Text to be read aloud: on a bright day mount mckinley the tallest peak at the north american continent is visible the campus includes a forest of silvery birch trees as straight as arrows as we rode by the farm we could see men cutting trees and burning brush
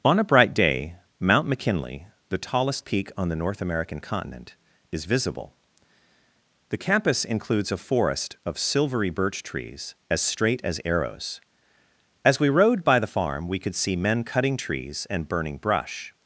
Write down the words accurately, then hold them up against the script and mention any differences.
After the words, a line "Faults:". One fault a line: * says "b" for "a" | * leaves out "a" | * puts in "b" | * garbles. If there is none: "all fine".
on a bright day mount mckinley the tallest peak on the north american continent is visible the campus includes a forest of silvery birch trees as straight as arrows as we rode by the farm we could see men cutting trees and burning brush
Faults:
* says "on" for "at"